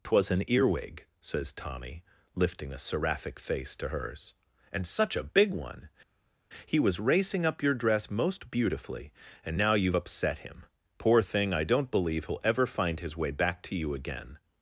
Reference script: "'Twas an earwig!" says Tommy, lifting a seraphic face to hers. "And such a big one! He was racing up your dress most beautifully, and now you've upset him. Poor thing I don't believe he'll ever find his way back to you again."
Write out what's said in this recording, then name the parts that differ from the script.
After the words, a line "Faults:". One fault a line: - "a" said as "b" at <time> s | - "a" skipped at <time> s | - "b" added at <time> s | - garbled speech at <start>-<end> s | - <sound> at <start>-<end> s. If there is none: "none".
"'Twas an earwig!" says Tommy, lifting a seraphic face to hers. "And such a big one! He was racing up your dress most beautifully, and now you've upset him. Poor thing I don't believe he'll ever find his way back to you again."
Faults:
none